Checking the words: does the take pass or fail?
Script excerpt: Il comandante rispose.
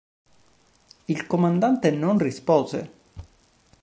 fail